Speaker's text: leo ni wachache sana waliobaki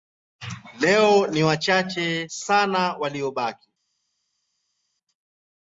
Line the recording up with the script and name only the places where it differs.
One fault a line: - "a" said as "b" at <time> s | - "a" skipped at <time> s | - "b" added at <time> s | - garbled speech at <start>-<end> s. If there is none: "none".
none